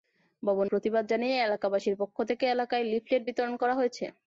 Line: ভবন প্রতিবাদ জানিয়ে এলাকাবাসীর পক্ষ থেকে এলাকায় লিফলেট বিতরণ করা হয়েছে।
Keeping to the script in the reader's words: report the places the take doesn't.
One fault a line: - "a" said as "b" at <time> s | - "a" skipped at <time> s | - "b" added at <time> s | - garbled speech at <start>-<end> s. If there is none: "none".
none